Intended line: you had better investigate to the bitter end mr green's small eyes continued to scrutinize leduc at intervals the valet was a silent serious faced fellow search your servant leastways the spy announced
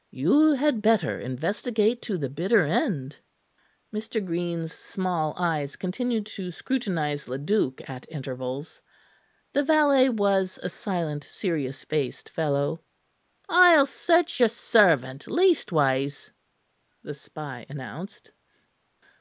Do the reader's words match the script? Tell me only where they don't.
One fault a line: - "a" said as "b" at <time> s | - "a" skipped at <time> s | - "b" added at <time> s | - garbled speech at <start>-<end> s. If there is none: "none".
- "i'll" added at 13.5 s